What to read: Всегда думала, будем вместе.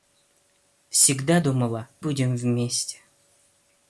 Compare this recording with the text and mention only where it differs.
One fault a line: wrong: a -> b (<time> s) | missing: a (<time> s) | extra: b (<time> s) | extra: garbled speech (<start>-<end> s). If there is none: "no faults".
no faults